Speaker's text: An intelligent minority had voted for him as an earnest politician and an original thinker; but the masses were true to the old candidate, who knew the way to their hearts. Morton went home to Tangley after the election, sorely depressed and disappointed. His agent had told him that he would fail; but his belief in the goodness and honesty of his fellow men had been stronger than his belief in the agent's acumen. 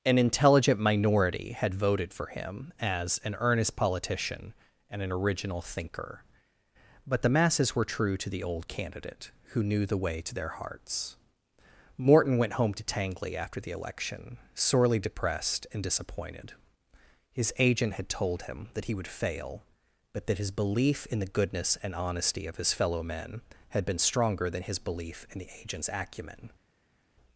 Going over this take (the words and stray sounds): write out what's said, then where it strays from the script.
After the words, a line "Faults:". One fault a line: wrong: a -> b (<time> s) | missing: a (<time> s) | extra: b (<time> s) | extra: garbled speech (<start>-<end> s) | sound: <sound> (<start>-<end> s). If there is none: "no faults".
An intelligent minority had voted for him as an earnest politician and an original thinker; but the masses were true to the old candidate, who knew the way to their hearts. Morton went home to Tangley after the election, sorely depressed and disappointed. His agent had told him that he would fail; but that his belief in the goodness and honesty of his fellow men had been stronger than his belief in the agent's acumen.
Faults:
extra: that (20.2 s)